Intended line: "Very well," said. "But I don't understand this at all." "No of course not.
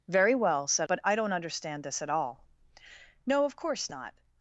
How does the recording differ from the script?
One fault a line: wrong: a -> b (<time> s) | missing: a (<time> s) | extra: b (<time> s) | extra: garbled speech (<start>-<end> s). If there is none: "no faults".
no faults